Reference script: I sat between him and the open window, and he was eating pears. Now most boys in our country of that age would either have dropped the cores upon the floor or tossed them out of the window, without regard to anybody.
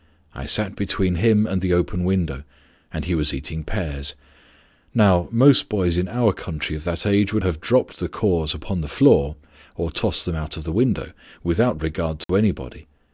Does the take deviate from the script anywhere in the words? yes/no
yes